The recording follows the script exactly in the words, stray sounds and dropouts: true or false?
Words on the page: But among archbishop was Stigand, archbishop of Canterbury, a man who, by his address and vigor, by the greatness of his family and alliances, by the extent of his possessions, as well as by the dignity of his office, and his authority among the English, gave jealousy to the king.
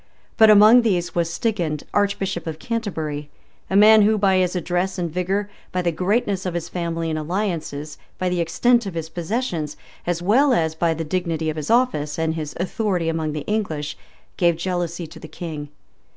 false